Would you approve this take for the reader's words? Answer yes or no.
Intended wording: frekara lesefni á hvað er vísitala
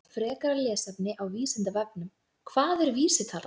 no